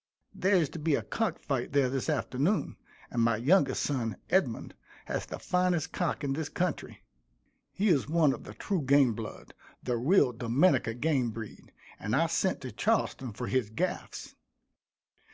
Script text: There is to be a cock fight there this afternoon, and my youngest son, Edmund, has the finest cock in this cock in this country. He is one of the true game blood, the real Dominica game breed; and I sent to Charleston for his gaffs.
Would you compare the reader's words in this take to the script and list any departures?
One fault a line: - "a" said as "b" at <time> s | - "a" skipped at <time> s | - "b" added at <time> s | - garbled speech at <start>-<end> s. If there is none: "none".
- "cock in this" skipped at 6.5 s